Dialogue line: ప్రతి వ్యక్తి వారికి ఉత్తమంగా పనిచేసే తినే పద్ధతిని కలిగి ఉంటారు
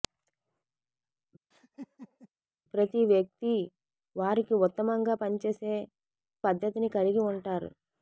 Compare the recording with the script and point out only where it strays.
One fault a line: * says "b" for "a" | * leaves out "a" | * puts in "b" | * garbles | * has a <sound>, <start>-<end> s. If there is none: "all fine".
* has a laugh, 1.5-2.3 s
* leaves out "తినే"